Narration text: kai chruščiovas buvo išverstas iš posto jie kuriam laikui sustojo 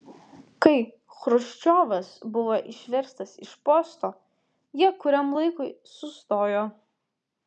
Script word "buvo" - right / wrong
right